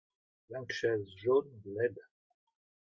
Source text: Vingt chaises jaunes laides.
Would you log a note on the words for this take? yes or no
no